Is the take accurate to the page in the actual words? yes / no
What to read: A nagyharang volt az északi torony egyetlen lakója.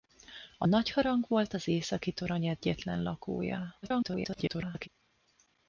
no